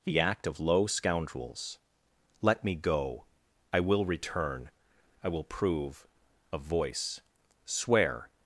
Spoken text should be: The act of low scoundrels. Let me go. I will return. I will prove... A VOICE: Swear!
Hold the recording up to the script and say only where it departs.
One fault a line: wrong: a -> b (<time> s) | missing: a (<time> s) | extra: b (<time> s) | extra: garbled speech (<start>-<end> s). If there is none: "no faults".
no faults